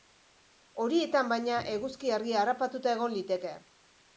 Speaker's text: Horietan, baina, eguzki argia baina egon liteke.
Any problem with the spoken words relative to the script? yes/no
yes